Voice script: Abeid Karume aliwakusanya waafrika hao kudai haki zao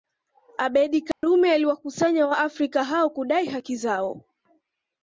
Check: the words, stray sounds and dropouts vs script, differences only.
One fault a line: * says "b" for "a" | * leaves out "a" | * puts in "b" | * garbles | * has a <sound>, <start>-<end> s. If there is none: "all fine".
* has a dropout, 1.1-1.2 s